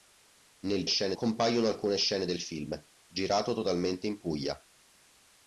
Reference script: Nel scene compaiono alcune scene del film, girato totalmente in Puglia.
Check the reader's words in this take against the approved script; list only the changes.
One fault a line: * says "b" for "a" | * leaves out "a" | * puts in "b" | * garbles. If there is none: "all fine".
all fine